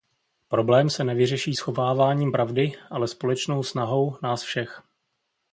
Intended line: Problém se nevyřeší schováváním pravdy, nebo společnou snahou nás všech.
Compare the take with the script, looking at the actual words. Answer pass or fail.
fail